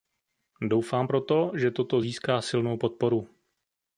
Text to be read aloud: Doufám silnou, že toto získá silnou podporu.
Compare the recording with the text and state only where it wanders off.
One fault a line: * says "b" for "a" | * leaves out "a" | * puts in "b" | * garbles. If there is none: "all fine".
* says "proto" for "silnou"